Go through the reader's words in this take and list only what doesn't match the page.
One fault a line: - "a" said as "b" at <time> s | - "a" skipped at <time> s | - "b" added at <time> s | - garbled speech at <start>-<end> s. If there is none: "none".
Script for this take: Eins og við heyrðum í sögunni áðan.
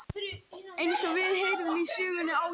none